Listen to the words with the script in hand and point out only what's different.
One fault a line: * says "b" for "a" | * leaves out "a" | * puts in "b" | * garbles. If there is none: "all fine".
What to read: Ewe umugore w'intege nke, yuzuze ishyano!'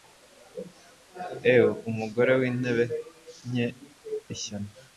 * leaves out "yuzuze"